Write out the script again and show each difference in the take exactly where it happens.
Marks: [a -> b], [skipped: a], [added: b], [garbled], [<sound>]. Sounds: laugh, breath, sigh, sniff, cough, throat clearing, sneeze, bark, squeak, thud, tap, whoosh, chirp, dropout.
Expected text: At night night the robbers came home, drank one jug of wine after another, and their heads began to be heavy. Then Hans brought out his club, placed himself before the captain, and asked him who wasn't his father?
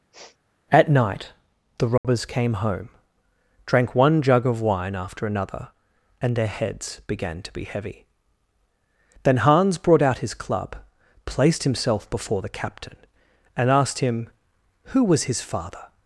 [sniff] At night [skipped: night] the robbers [dropout] came home, drank one jug of wine after another, and their heads began to be heavy. Then Hans brought out his club, placed himself before the captain, and asked him who [wasn't -> was] his father?